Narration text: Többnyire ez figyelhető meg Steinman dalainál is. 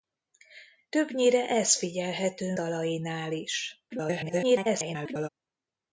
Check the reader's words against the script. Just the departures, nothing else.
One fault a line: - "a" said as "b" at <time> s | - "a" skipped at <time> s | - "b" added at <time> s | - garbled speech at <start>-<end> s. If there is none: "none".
- "meg Steinman" skipped at 2.6 s
- garbled speech at 3.9-5.3 s